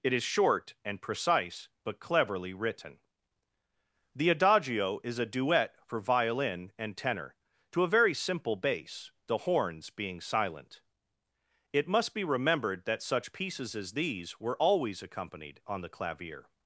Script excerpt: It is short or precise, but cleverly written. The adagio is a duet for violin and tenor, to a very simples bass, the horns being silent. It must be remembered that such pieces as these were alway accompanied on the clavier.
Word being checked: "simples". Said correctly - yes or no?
no